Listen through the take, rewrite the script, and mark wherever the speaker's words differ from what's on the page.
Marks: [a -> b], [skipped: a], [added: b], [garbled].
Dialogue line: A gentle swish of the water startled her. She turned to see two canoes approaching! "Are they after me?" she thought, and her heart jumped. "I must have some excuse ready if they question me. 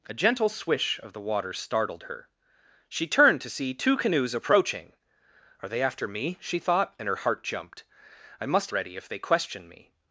A gentle swish of the water startled her. She turned to see two canoes approaching! "Are they after me?" she thought, and her heart jumped. "I must [skipped: have some excuse] ready if they question me.